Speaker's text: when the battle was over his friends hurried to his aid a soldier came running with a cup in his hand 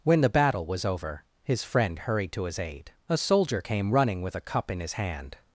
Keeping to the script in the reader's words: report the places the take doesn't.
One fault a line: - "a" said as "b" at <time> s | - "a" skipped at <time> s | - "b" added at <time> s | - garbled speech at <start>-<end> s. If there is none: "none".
- "friends" said as "friend" at 1.6 s